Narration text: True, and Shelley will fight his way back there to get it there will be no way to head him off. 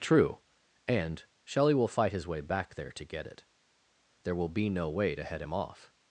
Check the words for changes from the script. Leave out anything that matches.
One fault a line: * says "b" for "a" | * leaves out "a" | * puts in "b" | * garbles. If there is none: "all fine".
all fine